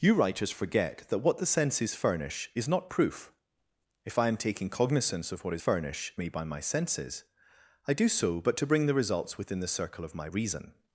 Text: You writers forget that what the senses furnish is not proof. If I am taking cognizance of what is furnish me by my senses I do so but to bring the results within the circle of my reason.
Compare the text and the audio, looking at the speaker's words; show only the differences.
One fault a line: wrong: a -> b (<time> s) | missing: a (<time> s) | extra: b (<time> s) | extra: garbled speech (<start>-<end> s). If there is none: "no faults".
no faults